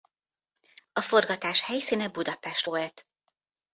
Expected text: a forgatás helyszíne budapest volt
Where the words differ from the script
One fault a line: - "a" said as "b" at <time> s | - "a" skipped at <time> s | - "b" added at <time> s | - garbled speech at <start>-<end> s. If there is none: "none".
none